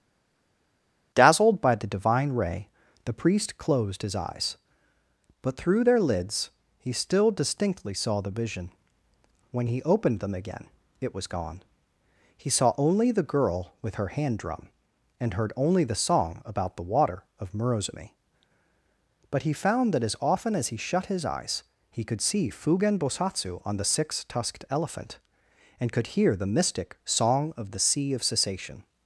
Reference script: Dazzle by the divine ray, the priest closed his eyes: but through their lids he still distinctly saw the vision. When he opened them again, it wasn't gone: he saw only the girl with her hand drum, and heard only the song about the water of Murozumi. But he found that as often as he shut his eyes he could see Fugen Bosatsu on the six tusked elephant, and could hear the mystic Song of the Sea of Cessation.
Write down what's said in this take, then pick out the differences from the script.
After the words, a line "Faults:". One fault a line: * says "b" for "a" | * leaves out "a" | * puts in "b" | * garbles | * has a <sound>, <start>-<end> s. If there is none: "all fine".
Dazzled by the divine ray, the priest closed his eyes: but through their lids he still distinctly saw the vision. When he opened them again, it was gone: he saw only the girl with her hand drum, and heard only the song about the water of Murozumi. But he found that as often as he shut his eyes he could see Fugen Bosatsu on the six tusked elephant, and could hear the mystic Song of the Sea of Cessation.
Faults:
* says "Dazzled" for "Dazzle"
* says "was" for "wasn't"